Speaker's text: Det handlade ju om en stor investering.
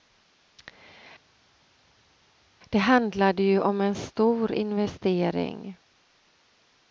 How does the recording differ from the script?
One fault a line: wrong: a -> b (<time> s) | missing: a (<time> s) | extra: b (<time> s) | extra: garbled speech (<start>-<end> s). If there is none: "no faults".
no faults